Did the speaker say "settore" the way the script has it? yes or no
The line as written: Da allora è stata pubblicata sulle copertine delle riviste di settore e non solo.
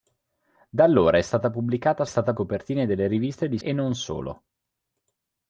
no